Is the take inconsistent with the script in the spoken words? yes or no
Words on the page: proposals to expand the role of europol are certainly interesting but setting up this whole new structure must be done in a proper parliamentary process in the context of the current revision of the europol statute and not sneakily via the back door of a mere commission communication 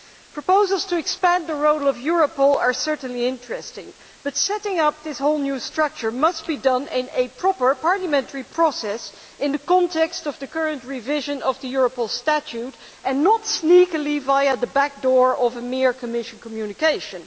no